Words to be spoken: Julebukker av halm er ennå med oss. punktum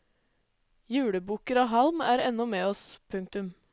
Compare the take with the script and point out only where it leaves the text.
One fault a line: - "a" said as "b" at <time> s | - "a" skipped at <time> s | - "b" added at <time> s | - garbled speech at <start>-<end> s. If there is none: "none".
none